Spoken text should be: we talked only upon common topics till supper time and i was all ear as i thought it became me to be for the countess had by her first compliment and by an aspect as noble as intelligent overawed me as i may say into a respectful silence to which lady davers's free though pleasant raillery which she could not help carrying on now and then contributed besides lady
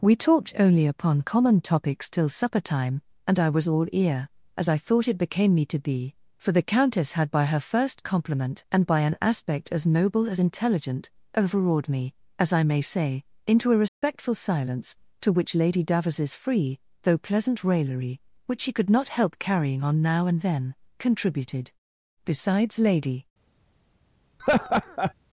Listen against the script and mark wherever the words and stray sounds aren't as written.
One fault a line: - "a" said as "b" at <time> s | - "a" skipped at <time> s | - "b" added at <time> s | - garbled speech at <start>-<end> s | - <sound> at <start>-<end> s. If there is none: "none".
- dropout at 13.9-14.0 s
- laugh at 24.4-25.1 s